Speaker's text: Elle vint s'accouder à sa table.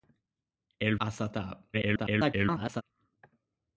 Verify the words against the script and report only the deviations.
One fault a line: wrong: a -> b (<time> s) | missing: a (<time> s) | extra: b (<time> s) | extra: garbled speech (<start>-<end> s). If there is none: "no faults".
missing: vint s'accouder (0.9 s)
extra: garbled speech (1.7-2.8 s)